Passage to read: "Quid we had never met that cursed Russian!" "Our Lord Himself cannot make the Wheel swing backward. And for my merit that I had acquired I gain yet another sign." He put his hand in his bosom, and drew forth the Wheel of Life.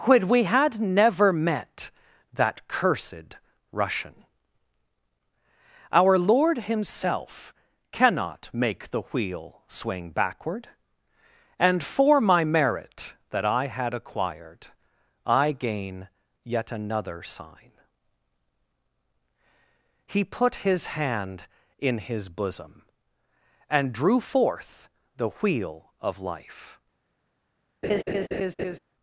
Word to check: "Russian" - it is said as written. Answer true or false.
true